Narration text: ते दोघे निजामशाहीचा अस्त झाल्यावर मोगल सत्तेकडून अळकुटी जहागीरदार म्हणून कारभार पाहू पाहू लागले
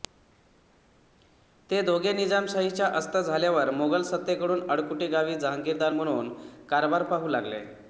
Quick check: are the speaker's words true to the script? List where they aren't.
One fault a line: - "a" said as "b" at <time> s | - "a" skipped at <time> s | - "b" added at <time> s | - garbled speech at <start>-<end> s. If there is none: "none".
- "गावी" added at 5.1 s
- "पाहू" skipped at 7.3 s